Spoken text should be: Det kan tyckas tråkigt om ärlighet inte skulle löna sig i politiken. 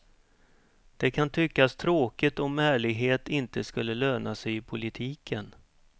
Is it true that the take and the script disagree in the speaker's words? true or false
false